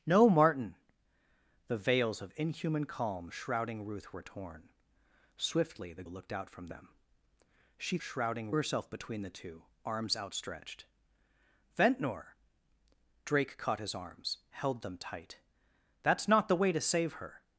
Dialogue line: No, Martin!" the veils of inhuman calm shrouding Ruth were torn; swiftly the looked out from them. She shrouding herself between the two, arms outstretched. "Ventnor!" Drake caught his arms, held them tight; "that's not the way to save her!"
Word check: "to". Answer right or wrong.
right